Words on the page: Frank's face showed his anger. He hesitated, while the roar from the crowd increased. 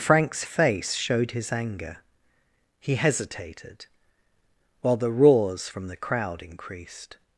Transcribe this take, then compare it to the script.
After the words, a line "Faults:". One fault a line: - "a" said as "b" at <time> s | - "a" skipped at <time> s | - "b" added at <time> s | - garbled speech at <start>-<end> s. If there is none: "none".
Frank's face showed his anger. He hesitated, while the roars from the crowd increased.
Faults:
- "roar" said as "roars" at 5.1 s